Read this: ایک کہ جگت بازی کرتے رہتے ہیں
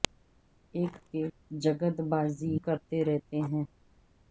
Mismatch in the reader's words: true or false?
false